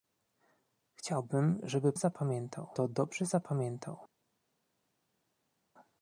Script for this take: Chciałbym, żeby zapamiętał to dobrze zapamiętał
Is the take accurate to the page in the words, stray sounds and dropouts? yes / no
yes